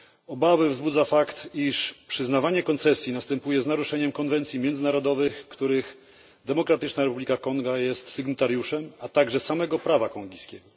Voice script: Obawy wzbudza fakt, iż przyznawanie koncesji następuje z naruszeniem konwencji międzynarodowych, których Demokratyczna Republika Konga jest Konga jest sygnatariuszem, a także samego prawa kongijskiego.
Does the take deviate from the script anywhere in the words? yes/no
yes